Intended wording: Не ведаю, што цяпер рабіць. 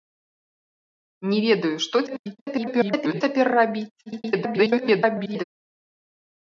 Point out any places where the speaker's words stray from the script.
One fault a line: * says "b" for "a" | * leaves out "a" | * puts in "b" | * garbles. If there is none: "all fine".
* garbles
* garbles